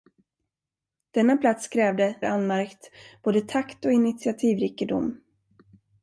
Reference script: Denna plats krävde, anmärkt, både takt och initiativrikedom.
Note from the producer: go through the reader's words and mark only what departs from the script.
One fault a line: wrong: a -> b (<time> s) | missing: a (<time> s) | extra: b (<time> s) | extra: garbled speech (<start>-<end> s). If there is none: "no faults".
no faults